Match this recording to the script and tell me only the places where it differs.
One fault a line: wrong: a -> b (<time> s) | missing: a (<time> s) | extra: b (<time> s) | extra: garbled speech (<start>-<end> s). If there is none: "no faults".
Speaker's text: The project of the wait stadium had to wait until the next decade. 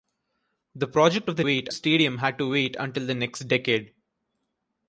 no faults